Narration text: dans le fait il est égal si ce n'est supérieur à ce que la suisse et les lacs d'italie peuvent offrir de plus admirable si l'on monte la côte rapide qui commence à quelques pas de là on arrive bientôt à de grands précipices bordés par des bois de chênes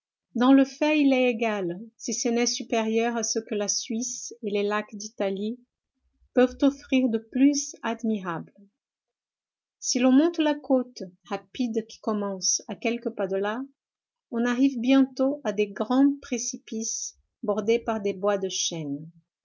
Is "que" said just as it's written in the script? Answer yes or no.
yes